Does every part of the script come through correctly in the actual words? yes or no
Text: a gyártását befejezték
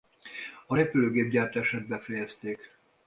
no